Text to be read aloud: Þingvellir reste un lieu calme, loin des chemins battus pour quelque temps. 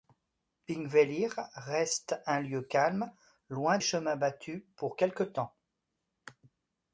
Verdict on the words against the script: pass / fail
fail